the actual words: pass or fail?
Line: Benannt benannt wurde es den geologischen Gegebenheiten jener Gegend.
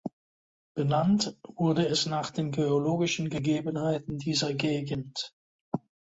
fail